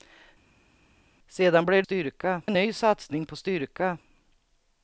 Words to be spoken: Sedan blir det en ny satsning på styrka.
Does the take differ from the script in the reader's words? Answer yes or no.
yes